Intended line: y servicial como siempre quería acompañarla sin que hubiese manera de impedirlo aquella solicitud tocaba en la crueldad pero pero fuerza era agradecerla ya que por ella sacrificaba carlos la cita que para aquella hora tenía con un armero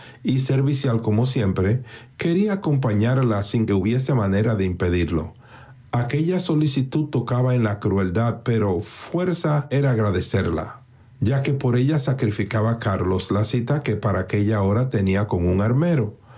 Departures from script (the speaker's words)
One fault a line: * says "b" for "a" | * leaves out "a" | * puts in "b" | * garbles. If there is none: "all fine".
* leaves out "pero"